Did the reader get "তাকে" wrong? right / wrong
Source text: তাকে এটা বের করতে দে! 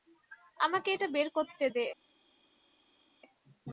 wrong